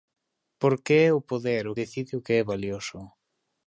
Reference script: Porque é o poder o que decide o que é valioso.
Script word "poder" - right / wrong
right